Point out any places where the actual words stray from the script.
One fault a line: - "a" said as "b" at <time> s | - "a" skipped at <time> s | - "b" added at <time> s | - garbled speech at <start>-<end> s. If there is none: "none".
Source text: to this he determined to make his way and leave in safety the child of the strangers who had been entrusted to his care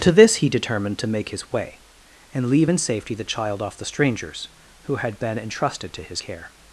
- "of" said as "off" at 3.6 s